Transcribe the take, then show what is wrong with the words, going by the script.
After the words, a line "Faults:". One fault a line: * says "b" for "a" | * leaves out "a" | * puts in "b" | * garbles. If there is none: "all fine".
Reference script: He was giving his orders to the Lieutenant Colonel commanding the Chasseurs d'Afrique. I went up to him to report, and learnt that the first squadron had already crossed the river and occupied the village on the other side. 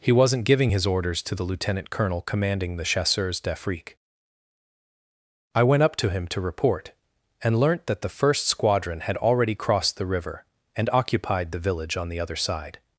He wasn't giving his orders to the Lieutenant Colonel commanding the Chasseurs d'Afrique. I went up to him to report, and learnt that the first squadron had already crossed the river and occupied the village on the other side.
Faults:
* says "wasn't" for "was"